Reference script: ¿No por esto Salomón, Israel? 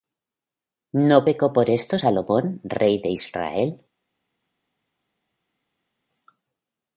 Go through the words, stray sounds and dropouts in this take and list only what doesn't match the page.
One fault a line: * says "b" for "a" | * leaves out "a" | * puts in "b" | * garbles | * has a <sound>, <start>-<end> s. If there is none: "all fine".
* puts in "pecó"
* puts in "rey de"